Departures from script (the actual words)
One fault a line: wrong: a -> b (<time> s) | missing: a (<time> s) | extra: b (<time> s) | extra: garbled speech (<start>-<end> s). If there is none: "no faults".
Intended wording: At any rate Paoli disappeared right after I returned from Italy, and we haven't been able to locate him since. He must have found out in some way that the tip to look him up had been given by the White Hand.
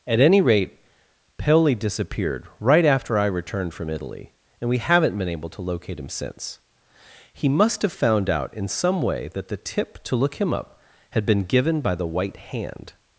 no faults